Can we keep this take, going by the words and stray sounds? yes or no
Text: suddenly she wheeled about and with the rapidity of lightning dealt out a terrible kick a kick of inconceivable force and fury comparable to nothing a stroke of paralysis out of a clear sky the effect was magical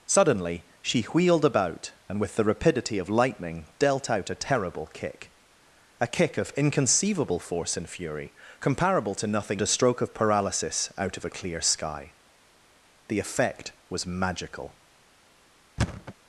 no